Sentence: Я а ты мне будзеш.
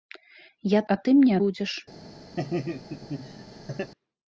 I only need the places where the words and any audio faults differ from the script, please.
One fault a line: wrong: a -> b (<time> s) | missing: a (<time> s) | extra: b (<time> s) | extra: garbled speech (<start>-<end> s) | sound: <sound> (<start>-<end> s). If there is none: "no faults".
sound: laugh (2.4-3.9 s)